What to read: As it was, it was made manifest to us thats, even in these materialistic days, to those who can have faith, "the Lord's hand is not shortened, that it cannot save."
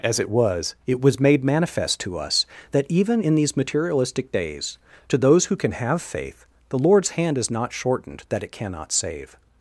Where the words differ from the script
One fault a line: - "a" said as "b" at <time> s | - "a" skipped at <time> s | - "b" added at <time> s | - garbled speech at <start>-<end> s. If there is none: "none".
- "thats" said as "that" at 2.7 s